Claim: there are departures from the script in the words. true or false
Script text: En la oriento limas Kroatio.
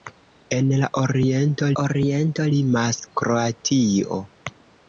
true